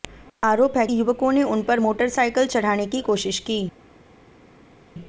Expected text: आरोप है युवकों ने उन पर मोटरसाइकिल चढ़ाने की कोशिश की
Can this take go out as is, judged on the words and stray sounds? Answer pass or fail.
pass